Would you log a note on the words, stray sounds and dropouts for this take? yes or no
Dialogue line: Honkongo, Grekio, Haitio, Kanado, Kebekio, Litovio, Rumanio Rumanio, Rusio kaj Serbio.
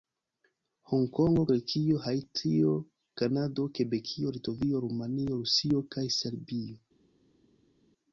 yes